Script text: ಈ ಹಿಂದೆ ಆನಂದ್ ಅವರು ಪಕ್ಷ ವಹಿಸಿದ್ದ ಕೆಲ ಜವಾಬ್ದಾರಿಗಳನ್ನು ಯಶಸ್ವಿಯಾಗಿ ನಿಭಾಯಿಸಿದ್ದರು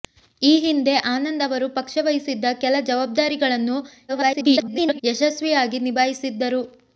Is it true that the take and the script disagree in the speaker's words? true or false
true